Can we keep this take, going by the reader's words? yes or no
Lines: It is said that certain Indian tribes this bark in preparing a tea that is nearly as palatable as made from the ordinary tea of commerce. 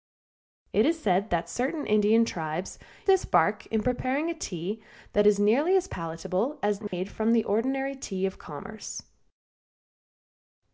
yes